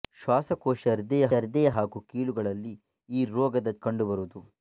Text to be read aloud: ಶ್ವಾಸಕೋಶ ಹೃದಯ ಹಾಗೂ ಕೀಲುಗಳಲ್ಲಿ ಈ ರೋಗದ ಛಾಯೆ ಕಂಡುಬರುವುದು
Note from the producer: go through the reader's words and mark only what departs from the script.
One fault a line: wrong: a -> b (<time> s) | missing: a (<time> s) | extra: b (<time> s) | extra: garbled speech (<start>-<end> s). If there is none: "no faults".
extra: ಹೃದಯ (1.4 s)
missing: ಛಾಯೆ (3.7 s)